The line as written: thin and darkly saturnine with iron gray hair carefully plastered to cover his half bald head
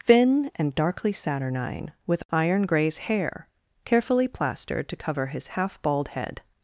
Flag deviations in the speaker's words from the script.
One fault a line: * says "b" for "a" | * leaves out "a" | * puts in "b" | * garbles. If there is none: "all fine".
* says "grays" for "gray"